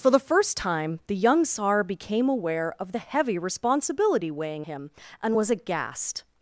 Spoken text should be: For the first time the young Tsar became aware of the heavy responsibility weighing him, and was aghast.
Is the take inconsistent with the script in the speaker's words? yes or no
no